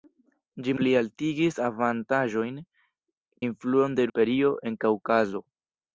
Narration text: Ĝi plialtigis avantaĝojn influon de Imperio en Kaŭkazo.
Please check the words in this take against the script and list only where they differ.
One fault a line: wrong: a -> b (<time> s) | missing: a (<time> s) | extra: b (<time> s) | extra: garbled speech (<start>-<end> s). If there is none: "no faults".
no faults